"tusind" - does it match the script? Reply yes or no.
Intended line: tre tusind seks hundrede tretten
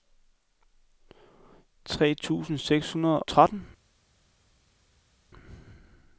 yes